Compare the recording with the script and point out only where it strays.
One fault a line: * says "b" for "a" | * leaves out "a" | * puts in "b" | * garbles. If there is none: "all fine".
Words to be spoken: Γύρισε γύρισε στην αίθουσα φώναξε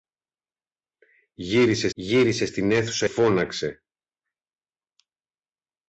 all fine